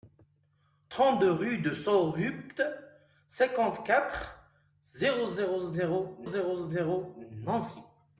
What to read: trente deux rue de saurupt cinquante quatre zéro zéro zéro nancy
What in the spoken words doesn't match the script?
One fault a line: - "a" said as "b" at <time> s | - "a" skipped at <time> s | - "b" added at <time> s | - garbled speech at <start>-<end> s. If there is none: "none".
- "zéro zéro" added at 6.2 s